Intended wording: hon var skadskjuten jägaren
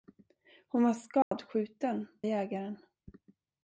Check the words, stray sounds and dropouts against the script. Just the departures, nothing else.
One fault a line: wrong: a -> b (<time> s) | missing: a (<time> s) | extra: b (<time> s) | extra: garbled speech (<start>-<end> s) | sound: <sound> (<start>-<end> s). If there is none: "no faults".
sound: dropout (1.2-1.3 s)